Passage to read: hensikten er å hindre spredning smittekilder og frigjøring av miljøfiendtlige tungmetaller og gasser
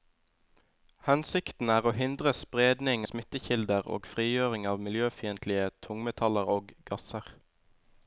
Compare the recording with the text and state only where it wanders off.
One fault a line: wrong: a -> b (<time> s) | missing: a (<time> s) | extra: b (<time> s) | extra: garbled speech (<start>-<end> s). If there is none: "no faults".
no faults